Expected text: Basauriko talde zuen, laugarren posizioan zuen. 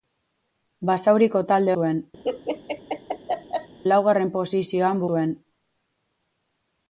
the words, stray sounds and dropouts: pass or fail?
fail